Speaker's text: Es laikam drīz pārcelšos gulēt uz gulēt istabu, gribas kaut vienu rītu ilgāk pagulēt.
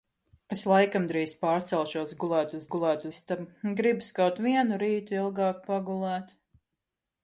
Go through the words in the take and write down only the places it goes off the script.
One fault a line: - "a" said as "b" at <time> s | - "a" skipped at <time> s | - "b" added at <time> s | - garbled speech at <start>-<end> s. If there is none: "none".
none